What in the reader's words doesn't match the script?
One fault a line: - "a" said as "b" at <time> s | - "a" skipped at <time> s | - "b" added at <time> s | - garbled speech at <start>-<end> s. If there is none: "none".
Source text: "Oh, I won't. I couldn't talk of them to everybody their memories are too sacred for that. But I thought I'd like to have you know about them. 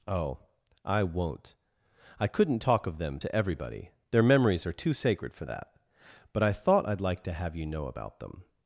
none